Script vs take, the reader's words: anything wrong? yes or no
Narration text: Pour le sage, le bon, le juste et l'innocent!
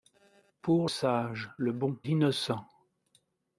yes